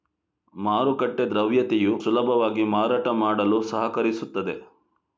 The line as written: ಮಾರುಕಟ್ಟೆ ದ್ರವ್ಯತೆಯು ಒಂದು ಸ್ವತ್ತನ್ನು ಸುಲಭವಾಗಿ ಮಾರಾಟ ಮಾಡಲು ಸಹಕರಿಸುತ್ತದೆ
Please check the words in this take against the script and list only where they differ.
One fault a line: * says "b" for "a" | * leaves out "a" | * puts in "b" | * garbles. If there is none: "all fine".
* leaves out "ಒಂದು ಸ್ವತ್ತನ್ನು"